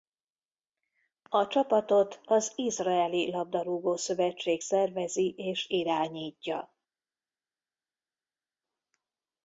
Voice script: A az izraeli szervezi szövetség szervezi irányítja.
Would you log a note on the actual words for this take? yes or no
yes